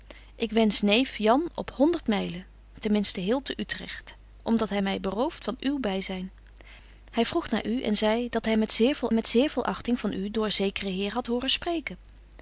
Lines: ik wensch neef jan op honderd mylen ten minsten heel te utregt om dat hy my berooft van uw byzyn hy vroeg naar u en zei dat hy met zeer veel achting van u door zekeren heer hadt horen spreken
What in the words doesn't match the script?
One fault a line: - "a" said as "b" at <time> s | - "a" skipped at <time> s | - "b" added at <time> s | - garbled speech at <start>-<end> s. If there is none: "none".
- "met zeer veel" added at 9.1 s